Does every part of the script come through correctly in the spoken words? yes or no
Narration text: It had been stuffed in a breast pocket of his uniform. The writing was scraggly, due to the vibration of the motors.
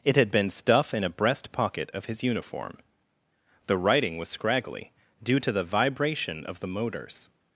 no